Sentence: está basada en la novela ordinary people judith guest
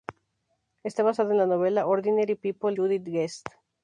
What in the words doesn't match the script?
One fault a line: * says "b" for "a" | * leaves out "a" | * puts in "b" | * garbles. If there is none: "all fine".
all fine